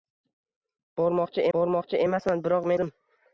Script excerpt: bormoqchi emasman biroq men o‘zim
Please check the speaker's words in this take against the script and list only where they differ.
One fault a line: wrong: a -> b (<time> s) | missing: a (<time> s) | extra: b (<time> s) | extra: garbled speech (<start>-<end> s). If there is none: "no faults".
extra: bormoqchi (1.6 s)
missing: men (2.7 s)